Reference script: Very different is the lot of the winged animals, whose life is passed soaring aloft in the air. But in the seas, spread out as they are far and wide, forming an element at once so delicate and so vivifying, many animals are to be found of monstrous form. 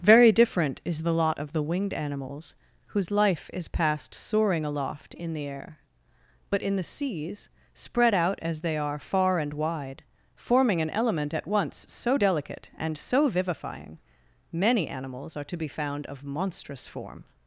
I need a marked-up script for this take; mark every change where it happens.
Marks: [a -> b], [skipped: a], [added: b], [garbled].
Very different is the lot of the winged animals, whose life is passed soaring aloft in the air. But in the seas, spread out as they are far and wide, forming an element at once so delicate and so vivifying, many animals are to be found of monstrous form.